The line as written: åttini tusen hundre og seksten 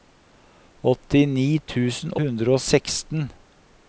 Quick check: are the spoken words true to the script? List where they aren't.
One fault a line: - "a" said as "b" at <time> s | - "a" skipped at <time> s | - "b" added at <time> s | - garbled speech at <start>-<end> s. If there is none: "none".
none